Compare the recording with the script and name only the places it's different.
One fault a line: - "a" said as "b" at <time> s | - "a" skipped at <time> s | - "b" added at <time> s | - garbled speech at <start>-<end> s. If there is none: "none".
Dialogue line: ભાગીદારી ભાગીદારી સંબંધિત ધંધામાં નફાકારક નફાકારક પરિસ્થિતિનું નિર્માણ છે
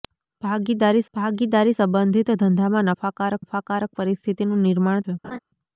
none